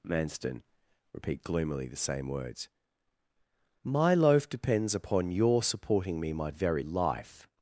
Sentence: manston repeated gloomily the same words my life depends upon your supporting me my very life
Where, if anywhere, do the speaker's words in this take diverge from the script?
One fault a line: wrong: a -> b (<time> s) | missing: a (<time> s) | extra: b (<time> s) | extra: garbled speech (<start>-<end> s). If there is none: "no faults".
wrong: repeated -> repeat (1.1 s)
wrong: life -> loaf (4.1 s)